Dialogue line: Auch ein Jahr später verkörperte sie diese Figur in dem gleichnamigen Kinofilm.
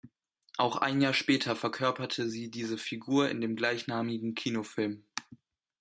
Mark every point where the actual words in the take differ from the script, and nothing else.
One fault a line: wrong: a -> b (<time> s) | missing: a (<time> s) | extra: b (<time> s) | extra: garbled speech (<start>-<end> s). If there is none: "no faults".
no faults